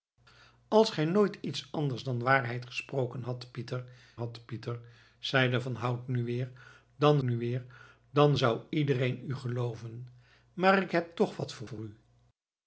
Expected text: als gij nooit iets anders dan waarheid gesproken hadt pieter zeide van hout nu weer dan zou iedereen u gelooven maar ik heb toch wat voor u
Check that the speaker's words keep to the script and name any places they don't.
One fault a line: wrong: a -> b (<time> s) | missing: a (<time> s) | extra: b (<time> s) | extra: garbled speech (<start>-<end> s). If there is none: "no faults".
extra: hadt pieter (4.2 s)
extra: nu weer dan (7.2 s)
extra: voor (11.6 s)